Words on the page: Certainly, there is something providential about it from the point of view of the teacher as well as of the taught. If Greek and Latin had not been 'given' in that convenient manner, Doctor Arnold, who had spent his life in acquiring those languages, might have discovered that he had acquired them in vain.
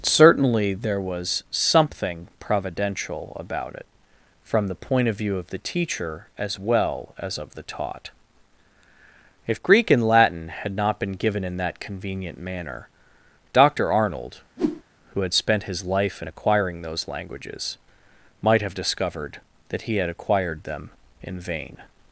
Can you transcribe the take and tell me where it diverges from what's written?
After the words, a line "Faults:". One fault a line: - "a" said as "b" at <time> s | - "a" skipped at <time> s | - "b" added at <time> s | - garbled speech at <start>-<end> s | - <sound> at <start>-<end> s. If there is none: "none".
Certainly, there was something providential about it from the point of view of the teacher as well as of the taught. If Greek and Latin had not been 'given' in that convenient manner, Doctor Arnold, who had spent his life in acquiring those languages, might have discovered that he had acquired them in vain.
Faults:
- "is" said as "was" at 1.0 s
- whoosh at 14.6-14.8 s